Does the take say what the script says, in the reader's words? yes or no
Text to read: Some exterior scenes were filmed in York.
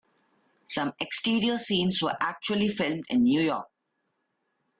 no